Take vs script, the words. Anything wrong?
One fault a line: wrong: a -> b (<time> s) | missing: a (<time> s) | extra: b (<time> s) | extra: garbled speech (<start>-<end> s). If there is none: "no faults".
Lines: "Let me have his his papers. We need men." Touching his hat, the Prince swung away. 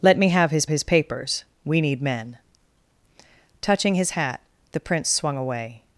no faults